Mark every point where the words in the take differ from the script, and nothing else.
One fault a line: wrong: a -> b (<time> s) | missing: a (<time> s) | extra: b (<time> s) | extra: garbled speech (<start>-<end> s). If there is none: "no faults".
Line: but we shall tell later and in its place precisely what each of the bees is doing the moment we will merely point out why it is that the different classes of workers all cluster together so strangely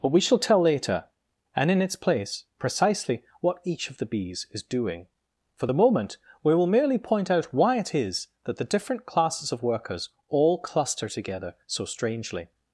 extra: for (5.5 s)